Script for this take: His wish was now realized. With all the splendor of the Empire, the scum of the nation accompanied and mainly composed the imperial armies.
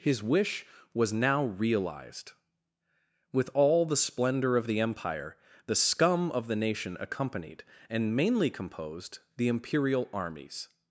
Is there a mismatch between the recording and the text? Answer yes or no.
no